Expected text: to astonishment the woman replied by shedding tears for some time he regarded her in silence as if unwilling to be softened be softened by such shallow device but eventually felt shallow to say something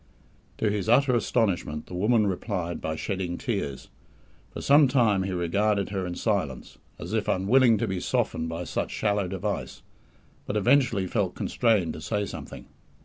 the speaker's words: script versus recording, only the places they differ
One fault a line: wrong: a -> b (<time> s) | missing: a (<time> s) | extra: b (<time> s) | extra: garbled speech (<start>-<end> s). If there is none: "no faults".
extra: his utter (0.7 s)
missing: be softened (8.5 s)
wrong: shallow -> constrained (11.3 s)